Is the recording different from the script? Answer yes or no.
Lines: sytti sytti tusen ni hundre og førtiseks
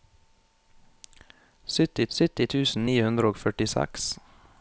no